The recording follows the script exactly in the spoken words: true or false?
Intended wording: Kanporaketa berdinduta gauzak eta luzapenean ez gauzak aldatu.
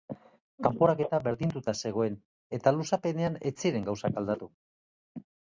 false